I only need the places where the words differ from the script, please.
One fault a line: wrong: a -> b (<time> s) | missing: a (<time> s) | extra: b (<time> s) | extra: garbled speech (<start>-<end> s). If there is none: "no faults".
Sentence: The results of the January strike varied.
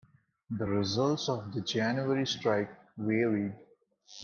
no faults